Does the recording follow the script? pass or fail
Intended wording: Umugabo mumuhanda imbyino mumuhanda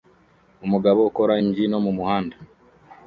fail